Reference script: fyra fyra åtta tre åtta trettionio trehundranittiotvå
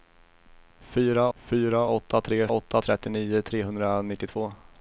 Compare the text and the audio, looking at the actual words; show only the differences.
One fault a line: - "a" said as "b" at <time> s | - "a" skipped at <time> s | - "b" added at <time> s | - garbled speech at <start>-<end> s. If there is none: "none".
none